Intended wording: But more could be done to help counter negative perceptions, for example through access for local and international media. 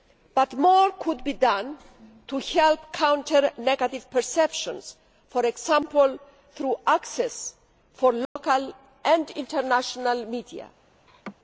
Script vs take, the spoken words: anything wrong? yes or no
no